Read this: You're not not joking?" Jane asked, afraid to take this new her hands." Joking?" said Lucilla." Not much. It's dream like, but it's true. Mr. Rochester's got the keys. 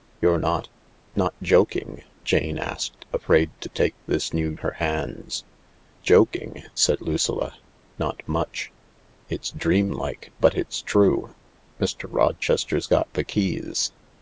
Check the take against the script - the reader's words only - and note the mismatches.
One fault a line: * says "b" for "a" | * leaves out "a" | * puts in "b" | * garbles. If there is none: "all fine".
all fine